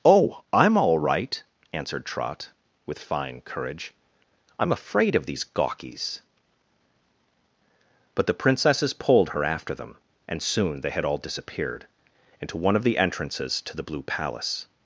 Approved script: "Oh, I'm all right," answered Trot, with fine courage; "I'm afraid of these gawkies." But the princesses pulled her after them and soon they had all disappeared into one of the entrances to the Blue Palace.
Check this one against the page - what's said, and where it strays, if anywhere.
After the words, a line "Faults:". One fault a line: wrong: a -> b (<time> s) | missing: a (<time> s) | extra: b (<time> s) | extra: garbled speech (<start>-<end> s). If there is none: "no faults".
"Oh, I'm all right," answered Trot, with fine courage; "I'm afraid of these gawkies." But the princesses pulled her after them and soon they had all disappeared into one of the entrances to the Blue Palace.
Faults:
no faults